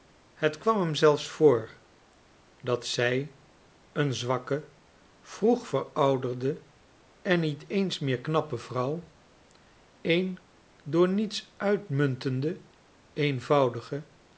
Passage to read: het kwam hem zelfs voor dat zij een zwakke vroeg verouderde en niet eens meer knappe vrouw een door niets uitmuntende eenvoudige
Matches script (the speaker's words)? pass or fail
pass